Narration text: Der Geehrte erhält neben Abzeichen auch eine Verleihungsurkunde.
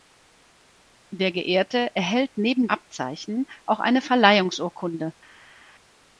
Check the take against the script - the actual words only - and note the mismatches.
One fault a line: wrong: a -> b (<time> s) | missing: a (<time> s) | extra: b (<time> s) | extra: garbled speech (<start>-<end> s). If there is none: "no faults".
no faults